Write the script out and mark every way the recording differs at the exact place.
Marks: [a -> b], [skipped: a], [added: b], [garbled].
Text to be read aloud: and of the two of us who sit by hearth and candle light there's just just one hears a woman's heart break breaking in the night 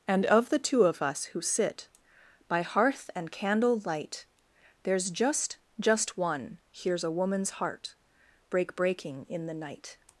and of the two of us who sit by hearth and candle light there's just just one hears a woman's heart break breaking in the night